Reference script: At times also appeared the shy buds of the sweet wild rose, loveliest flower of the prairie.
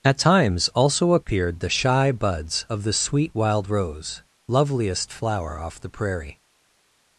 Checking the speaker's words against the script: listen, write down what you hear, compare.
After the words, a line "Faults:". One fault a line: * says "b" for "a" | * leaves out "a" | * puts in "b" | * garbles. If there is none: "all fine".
At times also appeared the shy buds of the sweet wild rose, loveliest flower off the prairie.
Faults:
* says "off" for "of"